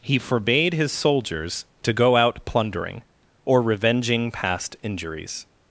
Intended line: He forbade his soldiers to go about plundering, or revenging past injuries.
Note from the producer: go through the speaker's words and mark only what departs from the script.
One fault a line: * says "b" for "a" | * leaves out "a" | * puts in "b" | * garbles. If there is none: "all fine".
* says "out" for "about"